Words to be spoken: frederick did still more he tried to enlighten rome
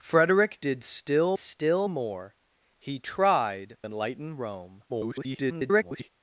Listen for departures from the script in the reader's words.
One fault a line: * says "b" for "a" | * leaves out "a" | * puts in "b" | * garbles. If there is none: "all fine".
* puts in "still"
* leaves out "to"
* garbles